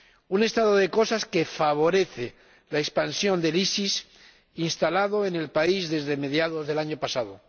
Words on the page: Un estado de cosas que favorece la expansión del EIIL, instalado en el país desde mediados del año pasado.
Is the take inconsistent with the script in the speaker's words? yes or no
no